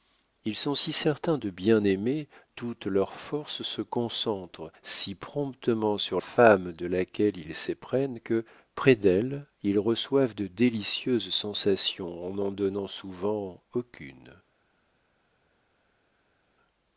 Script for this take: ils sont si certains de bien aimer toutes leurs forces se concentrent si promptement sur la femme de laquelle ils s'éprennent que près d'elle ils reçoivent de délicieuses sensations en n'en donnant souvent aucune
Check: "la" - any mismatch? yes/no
yes